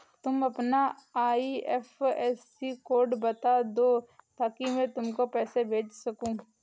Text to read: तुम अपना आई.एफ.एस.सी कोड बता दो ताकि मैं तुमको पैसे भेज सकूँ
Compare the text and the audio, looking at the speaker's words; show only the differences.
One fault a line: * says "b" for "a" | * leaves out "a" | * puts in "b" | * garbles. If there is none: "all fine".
all fine